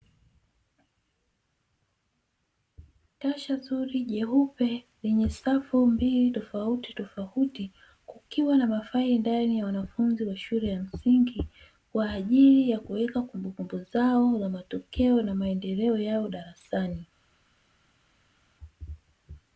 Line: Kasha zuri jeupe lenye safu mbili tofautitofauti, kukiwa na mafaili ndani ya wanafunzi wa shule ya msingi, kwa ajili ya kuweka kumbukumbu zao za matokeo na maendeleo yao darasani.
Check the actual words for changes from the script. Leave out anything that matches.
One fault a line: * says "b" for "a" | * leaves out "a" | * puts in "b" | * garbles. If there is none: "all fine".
all fine